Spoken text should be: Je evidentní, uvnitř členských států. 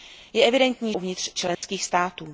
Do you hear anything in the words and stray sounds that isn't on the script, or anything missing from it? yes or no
yes